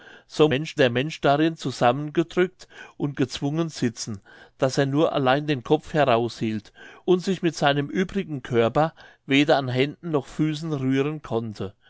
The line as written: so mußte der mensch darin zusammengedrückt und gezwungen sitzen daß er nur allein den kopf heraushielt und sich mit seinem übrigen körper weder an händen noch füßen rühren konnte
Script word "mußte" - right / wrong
wrong